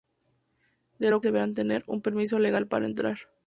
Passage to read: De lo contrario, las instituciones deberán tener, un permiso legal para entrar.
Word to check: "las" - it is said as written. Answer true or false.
false